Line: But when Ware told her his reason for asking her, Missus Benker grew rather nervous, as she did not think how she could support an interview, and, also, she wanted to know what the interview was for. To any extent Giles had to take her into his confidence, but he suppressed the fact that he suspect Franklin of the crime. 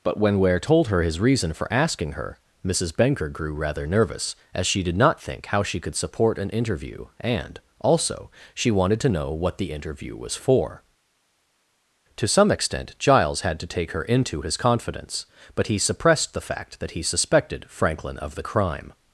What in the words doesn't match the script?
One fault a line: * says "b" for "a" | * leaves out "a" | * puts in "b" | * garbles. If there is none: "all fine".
* says "some" for "any"
* says "suspected" for "suspect"